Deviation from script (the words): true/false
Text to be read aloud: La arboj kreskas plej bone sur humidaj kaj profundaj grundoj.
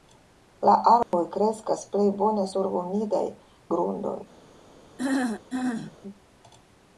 true